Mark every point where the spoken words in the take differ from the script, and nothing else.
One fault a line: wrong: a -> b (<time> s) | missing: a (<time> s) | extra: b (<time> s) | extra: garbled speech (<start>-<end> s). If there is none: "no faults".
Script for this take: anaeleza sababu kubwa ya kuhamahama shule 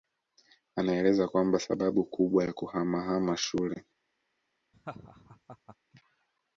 extra: kwamba (1.3 s)